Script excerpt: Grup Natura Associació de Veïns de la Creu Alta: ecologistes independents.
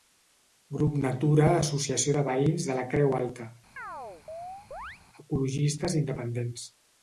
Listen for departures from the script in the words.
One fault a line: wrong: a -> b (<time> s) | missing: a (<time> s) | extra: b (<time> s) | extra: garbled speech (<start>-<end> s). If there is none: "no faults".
no faults